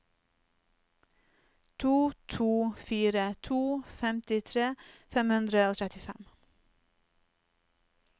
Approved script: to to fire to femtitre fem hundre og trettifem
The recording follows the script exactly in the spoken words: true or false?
true